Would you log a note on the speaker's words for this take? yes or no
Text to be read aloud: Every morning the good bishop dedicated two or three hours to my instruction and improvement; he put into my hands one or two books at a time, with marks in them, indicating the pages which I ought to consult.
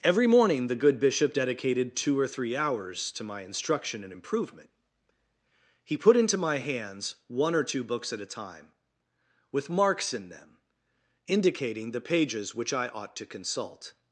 no